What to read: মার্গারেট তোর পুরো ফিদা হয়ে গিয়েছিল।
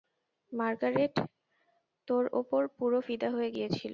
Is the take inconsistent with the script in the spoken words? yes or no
yes